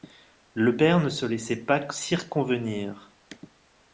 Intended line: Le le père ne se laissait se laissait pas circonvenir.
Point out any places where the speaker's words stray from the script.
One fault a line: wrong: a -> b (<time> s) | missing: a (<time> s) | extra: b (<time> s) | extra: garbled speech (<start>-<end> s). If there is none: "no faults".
missing: le (0.8 s)
missing: se laissait (1.6 s)